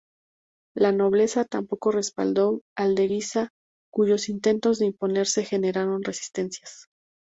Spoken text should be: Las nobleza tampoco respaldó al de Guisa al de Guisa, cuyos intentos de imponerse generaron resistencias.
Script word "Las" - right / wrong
wrong